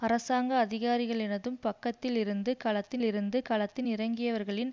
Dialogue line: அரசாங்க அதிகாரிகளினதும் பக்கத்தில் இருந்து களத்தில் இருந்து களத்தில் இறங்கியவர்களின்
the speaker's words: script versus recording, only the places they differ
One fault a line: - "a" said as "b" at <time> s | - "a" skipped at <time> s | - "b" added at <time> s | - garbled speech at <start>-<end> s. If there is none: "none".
none